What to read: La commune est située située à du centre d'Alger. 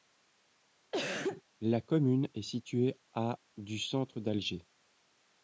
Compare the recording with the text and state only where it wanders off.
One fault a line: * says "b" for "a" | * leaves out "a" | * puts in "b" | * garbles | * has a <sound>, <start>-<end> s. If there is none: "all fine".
* has a cough, 0.9-1.4 s
* leaves out "située"